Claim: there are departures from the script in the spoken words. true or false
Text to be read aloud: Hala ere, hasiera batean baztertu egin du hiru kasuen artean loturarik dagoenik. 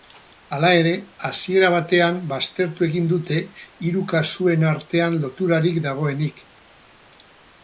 true